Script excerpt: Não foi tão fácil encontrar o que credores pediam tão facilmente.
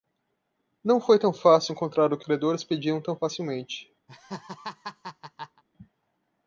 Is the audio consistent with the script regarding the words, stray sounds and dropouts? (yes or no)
no